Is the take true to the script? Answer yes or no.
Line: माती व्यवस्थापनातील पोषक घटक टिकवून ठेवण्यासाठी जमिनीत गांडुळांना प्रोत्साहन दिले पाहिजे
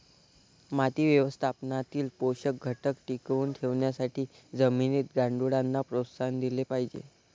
yes